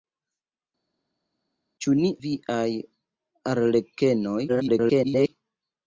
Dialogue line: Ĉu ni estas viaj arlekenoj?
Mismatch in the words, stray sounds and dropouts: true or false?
true